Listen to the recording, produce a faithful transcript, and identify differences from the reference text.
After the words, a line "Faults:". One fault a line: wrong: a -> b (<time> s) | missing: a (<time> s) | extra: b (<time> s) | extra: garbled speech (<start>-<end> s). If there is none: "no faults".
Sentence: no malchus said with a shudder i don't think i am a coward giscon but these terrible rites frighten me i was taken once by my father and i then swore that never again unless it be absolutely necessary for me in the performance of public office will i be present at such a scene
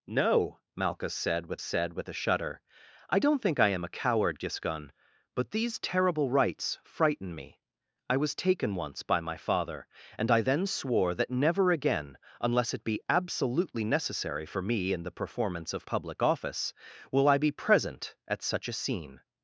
no malchus said with said with a shudder i don't think i am a coward giscon but these terrible rites frighten me i was taken once by my father and i then swore that never again unless it be absolutely necessary for me in the performance of public office will i be present at such a scene
Faults:
extra: said with (1.6 s)